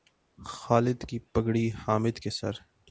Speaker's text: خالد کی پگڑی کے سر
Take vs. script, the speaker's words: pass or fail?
fail